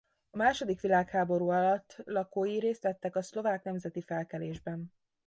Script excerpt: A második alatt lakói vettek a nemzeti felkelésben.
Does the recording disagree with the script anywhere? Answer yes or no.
yes